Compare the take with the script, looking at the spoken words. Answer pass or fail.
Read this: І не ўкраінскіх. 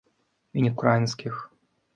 pass